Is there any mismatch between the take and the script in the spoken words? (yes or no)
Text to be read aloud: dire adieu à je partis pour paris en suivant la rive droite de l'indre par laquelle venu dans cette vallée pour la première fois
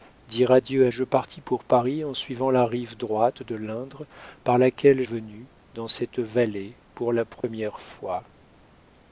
no